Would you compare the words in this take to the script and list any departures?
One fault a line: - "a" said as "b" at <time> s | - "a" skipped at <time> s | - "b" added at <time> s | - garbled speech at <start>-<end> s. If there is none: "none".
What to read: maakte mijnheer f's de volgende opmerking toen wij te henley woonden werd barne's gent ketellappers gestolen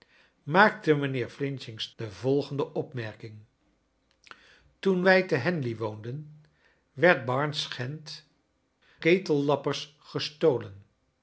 none